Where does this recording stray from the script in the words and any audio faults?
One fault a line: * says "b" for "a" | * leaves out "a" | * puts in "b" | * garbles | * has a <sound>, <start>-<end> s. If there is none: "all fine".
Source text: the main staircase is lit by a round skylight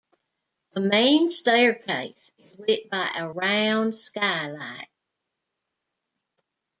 all fine